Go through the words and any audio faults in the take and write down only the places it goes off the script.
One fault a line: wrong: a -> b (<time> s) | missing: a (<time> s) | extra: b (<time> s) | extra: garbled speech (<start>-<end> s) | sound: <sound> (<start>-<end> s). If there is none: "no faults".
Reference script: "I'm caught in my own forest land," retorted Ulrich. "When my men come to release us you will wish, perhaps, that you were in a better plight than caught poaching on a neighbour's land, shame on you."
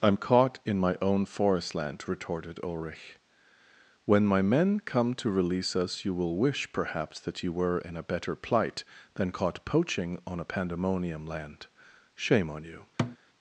wrong: neighbour's -> pandemonium (10.4 s)
sound: thud (13.0-13.2 s)